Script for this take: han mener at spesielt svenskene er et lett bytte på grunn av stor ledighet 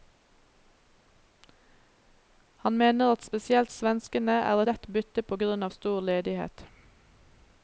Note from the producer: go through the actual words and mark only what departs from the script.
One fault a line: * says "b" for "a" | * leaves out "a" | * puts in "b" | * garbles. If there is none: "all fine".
* leaves out "et"